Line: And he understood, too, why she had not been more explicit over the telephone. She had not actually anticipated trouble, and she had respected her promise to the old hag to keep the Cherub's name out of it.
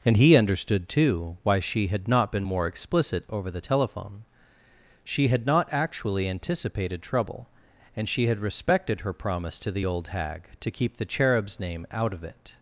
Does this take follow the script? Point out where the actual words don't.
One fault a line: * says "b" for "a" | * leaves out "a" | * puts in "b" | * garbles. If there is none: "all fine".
all fine